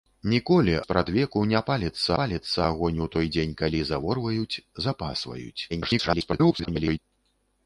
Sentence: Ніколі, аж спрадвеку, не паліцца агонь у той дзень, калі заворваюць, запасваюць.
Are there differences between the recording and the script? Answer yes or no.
yes